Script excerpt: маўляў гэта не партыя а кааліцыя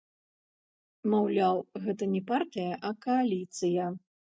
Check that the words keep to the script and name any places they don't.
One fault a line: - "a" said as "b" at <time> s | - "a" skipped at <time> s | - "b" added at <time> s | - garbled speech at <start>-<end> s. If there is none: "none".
none